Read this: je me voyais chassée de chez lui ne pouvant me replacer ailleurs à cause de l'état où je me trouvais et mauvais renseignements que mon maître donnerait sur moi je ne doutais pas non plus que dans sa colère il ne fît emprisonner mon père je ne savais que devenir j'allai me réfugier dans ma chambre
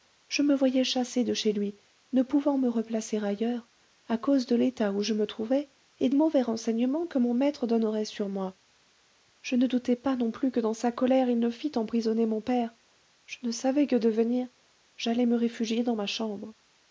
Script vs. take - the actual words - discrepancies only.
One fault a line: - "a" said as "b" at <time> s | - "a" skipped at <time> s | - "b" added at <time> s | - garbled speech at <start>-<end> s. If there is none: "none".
none